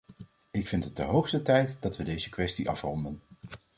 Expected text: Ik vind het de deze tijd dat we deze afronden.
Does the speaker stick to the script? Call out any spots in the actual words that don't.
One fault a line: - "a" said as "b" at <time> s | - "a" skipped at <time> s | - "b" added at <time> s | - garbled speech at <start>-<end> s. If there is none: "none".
- "deze" said as "hoogste" at 1.0 s
- "kwestie" added at 2.3 s